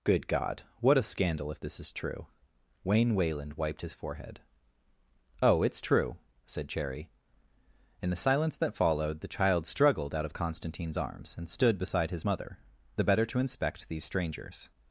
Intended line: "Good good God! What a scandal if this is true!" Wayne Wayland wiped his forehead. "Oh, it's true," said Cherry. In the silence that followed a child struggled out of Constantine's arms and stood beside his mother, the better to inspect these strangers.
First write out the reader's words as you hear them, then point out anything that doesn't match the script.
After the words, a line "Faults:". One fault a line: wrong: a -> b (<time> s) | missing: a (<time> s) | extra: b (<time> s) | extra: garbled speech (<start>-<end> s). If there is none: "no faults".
"Good God! What a scandal if this is true!" Wayne Wayland wiped his forehead. "Oh, it's true," said Cherry. In the silence that followed the child struggled out of Constantine's arms and stood beside his mother, the better to inspect these strangers.
Faults:
missing: good (0.2 s)
wrong: a -> the (9.2 s)